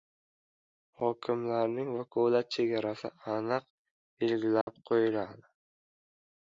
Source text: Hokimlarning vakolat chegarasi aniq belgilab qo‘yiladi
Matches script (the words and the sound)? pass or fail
fail